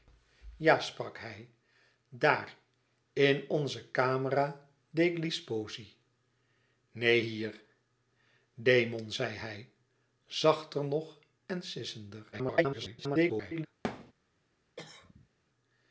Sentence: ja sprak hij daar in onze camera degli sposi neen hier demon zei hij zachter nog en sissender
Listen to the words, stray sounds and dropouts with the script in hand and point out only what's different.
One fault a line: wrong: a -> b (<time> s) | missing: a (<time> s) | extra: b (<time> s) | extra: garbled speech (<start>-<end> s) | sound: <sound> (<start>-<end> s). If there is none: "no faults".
extra: garbled speech (12.3-13.7 s)
sound: thud (13.8-14.1 s)
sound: cough (14.8-15.3 s)